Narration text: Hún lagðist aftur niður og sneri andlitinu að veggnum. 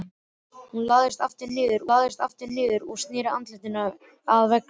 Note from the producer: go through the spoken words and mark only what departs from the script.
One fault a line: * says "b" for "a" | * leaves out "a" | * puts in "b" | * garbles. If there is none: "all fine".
* puts in "lagðist aftur niður"